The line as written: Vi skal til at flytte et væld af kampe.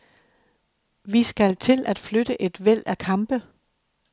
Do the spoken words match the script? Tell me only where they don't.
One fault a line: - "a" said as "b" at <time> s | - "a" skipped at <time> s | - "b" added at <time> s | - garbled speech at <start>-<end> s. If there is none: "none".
none